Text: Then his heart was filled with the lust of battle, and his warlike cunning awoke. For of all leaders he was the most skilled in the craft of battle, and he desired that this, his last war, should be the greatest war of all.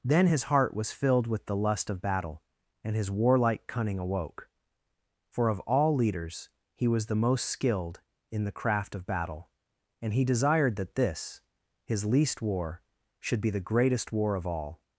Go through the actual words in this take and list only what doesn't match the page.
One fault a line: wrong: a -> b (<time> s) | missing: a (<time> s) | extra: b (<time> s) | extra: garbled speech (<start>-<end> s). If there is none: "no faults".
wrong: last -> least (12.1 s)